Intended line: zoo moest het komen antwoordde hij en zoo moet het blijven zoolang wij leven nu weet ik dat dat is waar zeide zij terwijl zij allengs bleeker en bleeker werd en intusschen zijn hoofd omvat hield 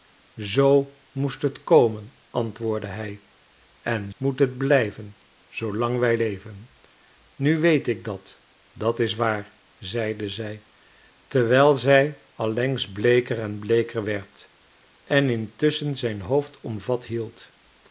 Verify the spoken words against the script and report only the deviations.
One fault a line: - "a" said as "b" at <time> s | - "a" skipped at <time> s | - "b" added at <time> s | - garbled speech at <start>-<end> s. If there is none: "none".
- "zoo" skipped at 4.1 s